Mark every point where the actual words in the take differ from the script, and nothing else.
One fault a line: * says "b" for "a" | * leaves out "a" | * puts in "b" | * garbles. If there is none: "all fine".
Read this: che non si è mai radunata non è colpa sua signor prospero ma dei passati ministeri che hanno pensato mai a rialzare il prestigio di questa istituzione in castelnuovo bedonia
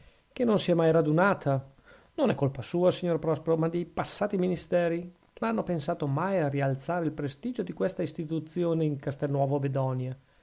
all fine